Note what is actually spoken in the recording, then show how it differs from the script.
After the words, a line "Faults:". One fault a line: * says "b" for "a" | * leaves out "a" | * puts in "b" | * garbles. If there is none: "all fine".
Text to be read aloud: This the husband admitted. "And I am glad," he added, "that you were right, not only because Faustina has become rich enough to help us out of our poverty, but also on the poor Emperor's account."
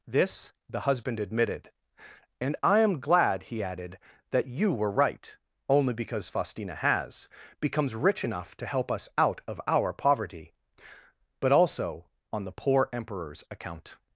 This the husband admitted. "And I am glad," he added, "that you were right, only because Faustina has becomes rich enough to help us out of our poverty, but also on the poor Emperor's account."
Faults:
* leaves out "not"
* says "becomes" for "become"